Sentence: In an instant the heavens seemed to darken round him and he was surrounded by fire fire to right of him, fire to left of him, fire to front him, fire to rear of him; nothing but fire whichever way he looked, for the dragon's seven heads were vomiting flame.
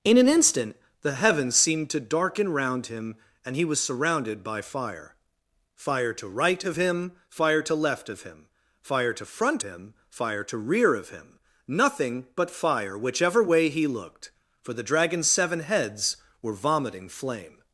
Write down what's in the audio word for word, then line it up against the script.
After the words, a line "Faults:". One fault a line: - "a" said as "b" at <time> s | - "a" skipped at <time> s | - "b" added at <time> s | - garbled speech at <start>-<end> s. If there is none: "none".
In an instant the heavens seemed to darken round him and he was surrounded by fire fire to right of him, fire to left of him, fire to front him, fire to rear of him; nothing but fire whichever way he looked, for the dragon's seven heads were vomiting flame.
Faults:
none